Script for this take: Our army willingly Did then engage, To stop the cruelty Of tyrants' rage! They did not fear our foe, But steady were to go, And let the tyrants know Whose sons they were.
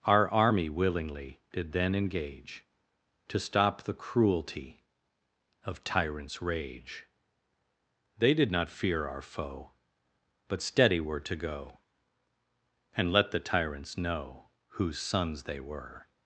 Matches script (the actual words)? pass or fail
pass